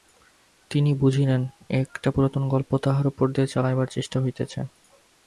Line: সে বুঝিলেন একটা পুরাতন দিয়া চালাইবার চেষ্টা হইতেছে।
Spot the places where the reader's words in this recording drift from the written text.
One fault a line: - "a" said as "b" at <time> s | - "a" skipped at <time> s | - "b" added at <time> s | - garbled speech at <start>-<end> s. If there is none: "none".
- "সে" said as "তিনি" at 0.7 s
- "গল্প তাঁহার উপর" added at 2.5 s